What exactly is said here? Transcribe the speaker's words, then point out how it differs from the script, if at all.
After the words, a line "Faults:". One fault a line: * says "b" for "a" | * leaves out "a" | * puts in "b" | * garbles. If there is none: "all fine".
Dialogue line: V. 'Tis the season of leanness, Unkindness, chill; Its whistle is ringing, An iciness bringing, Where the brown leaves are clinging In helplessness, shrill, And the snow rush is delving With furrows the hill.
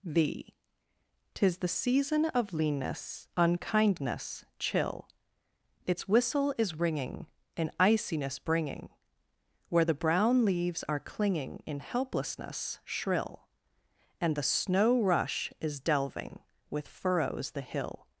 V. 'Tis the season of leanness, Unkindness, chill; Its whistle is ringing, An iciness bringing, Where the brown leaves are clinging In helplessness, shrill, And the snow rush is delving With furrows the hill.
Faults:
all fine